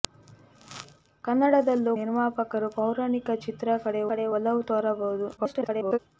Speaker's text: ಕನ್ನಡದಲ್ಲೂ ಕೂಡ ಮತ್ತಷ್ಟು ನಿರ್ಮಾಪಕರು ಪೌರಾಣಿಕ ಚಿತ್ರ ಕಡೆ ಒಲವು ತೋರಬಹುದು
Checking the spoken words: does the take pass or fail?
fail